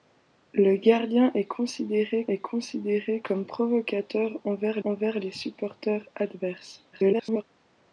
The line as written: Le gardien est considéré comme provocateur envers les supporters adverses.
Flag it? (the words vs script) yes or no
yes